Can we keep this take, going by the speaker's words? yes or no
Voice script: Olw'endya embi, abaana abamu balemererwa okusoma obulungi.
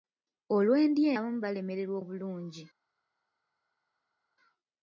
no